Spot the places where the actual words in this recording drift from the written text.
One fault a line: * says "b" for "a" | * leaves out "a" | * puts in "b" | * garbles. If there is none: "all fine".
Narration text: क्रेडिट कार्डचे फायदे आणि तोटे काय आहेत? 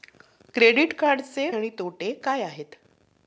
* leaves out "फायदे"